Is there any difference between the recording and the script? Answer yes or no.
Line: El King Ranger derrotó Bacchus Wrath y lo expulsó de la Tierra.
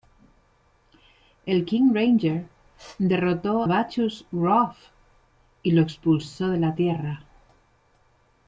no